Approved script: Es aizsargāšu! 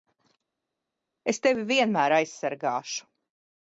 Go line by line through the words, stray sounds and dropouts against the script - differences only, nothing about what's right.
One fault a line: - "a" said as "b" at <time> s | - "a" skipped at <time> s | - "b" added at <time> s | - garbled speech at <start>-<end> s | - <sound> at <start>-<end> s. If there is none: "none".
- "tevi vienmēr" added at 1.4 s